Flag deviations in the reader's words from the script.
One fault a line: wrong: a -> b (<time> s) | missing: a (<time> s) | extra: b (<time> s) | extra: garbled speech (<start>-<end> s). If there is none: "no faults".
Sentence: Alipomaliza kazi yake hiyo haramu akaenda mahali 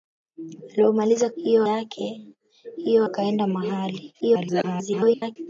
wrong: kazi -> hiyo (1.4 s)
missing: haramu (3.0 s)
extra: garbled speech (4.2-5.4 s)